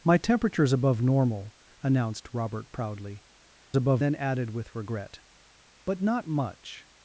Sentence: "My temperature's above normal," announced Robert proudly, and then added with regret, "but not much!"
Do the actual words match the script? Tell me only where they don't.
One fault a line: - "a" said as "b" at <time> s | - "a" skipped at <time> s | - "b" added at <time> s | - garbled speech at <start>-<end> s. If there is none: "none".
- "and" said as "above" at 3.8 s